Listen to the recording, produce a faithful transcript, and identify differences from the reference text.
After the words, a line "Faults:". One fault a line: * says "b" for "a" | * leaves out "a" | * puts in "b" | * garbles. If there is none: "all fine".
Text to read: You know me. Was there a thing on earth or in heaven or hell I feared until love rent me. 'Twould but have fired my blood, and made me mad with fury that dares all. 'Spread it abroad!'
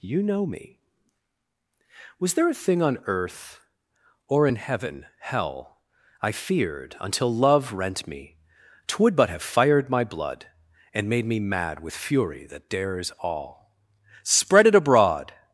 You know me. Was there a thing on earth or in heaven hell I feared until love rent me. 'Twould but have fired my blood, and made me mad with fury that dares all. 'Spread it abroad!'
Faults:
* leaves out "or"